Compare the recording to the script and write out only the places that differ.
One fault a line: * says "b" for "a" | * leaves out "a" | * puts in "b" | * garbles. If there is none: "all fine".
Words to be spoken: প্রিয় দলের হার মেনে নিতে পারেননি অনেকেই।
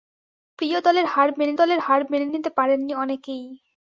* puts in "দলের হার মেনে"